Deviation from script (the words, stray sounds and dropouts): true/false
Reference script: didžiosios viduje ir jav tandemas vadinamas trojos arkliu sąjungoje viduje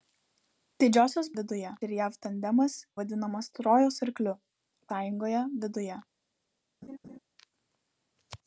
true